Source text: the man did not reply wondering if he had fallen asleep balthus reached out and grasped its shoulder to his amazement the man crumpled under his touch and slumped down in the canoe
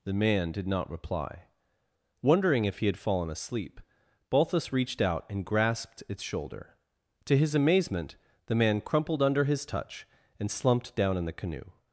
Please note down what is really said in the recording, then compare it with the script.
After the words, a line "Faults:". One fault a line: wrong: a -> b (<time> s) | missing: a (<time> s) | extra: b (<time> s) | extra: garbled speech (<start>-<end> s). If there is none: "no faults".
the man did not reply wondering if he had fallen asleep balthus reached out and grasped its shoulder to his amazement the man crumpled under his touch and slumped down in the canoe
Faults:
no faults